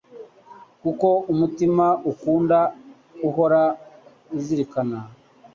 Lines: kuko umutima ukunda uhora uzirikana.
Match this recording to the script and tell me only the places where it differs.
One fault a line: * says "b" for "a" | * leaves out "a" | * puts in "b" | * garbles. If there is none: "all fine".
all fine